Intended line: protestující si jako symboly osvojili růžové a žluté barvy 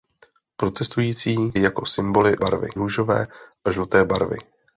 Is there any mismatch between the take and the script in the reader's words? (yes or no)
yes